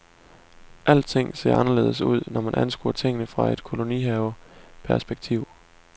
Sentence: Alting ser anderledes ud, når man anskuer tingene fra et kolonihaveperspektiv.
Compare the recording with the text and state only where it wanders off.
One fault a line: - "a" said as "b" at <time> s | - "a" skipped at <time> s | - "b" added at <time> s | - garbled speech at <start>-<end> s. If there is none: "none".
none